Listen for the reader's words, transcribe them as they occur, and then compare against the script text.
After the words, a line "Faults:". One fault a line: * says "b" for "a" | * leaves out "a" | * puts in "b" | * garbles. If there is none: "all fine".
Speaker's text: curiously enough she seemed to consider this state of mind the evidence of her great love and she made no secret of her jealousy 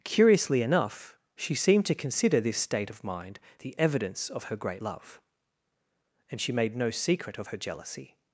curiously enough she seemed to consider this state of mind the evidence of her great love and she made no secret of her jealousy
Faults:
all fine